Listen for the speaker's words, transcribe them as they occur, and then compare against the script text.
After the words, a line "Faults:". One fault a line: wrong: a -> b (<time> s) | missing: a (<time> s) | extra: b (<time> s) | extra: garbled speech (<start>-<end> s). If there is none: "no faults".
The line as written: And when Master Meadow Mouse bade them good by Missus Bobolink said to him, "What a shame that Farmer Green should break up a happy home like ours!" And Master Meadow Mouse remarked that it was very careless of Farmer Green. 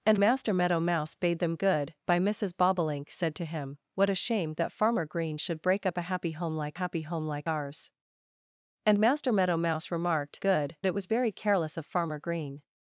And Master Meadow Mouse bade them good by Missus Bobolink said to him, "What a shame that Farmer Green should break up a happy home like happy home like ours!" And Master Meadow Mouse remarked good it was very careless of Farmer Green.
Faults:
missing: when (0.2 s)
extra: happy home like (6.8 s)
wrong: that -> good (10.4 s)